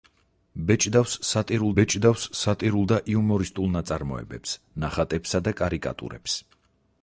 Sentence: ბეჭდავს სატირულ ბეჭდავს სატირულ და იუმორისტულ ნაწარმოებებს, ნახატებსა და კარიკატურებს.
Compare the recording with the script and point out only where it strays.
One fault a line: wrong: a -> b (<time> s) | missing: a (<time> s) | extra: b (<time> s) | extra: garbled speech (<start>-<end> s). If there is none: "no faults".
no faults